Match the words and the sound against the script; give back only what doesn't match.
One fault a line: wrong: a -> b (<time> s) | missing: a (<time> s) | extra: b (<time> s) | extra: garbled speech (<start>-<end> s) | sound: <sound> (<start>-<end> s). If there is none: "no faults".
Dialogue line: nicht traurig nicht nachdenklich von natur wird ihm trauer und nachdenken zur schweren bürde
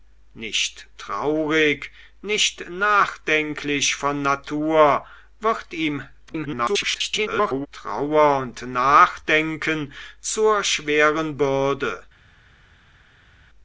extra: garbled speech (6.3-7.7 s)